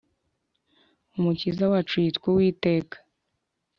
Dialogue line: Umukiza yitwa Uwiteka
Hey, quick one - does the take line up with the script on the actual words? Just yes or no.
no